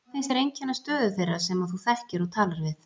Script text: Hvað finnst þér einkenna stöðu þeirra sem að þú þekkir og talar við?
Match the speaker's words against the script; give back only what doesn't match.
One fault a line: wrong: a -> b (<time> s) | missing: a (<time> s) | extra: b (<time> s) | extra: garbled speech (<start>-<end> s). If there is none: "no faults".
no faults